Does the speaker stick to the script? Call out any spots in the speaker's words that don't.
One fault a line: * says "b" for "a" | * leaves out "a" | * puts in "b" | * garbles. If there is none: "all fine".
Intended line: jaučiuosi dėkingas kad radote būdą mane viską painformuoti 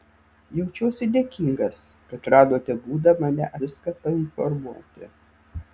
all fine